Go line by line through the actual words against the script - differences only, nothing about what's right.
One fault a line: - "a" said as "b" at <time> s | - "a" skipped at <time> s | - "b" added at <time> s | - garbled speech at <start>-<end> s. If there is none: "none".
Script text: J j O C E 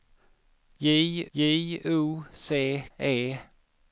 none